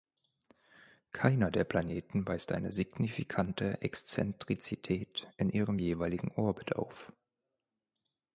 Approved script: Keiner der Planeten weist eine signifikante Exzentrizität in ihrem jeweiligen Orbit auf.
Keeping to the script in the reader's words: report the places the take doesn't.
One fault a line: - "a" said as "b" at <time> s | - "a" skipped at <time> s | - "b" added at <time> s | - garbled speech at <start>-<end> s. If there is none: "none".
none